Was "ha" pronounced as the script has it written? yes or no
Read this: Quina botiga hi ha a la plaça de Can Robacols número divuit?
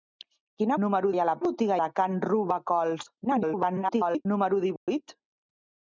yes